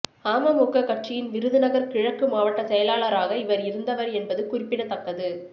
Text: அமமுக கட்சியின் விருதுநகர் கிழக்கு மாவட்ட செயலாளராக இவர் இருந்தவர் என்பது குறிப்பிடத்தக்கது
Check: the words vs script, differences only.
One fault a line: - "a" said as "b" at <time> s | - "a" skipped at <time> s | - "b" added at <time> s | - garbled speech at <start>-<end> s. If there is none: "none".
none